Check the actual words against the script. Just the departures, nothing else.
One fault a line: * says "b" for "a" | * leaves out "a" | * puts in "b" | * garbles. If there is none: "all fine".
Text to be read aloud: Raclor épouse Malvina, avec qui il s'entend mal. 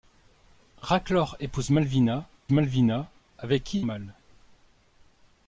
* puts in "Malvina"
* leaves out "il s'entend"